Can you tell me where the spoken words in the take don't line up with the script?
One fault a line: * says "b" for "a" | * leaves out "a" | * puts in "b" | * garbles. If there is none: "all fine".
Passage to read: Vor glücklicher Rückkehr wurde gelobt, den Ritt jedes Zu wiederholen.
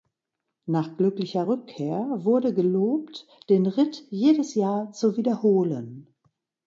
* says "Nach" for "Vor"
* puts in "Jahr"